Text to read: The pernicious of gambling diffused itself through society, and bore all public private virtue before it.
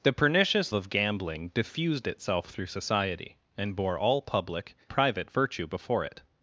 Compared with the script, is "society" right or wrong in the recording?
right